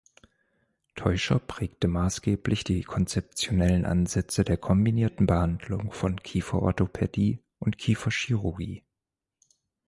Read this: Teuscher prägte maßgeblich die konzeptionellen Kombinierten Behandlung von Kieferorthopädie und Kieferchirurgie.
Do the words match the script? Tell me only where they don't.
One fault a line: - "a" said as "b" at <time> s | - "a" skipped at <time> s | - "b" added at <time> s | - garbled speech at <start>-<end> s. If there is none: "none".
- "Ansätze der" added at 3.8 s